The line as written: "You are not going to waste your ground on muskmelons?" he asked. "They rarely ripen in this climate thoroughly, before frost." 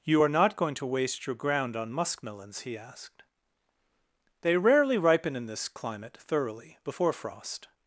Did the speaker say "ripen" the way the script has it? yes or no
yes